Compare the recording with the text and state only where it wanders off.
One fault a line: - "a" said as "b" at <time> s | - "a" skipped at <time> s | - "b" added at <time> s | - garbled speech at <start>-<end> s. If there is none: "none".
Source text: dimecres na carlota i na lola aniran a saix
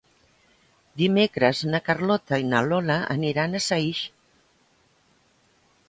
none